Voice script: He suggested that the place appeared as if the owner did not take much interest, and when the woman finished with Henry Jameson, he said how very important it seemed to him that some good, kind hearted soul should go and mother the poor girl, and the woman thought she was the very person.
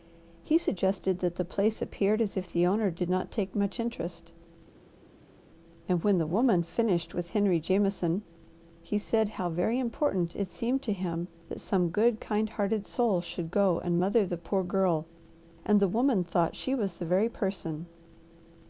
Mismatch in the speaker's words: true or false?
false